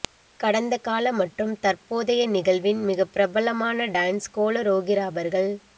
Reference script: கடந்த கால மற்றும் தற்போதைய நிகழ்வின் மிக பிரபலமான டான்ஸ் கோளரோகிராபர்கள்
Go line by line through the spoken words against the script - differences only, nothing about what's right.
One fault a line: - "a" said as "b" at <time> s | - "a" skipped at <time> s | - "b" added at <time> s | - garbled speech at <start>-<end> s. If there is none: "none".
none